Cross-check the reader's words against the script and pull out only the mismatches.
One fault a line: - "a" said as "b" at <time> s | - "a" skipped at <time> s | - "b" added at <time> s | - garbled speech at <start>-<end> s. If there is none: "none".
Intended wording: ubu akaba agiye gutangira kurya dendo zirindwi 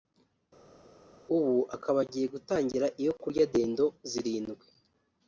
- "iyo" added at 3.0 s